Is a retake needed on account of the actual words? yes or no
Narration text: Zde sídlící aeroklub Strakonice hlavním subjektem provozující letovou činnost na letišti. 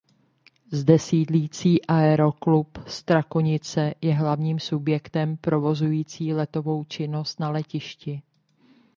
yes